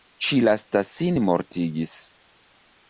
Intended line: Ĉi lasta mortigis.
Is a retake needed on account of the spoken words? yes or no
yes